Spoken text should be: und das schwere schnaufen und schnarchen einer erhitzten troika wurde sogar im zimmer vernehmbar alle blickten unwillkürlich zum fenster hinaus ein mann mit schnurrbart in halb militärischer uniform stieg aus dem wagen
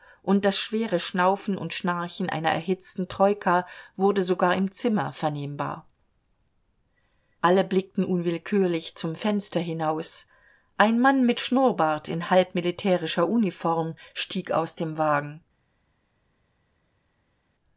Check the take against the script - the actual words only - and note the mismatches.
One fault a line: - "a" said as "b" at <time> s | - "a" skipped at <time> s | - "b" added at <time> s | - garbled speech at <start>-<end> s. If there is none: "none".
none